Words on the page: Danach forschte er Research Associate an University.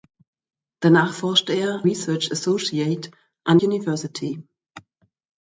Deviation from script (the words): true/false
false